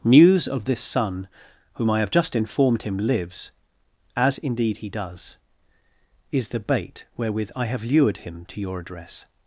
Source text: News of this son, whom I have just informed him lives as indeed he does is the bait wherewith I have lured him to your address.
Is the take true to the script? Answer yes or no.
yes